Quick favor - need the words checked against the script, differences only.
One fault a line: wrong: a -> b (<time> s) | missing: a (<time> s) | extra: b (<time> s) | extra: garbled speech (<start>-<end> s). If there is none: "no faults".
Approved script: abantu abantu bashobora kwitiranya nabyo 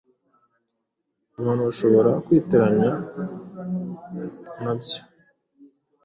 missing: abantu (1.6 s)